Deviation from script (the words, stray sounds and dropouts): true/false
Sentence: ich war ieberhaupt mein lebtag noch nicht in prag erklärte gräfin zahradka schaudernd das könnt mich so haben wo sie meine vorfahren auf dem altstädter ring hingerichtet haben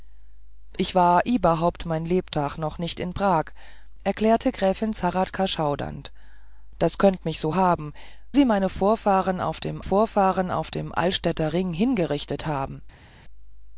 true